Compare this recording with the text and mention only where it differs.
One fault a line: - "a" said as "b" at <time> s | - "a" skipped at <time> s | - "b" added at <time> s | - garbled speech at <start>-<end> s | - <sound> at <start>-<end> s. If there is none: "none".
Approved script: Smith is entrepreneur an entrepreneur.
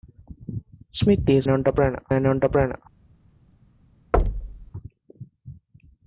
- thud at 4.1-4.7 s